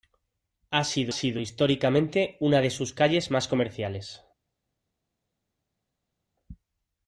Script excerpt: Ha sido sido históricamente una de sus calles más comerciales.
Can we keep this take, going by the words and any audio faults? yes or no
yes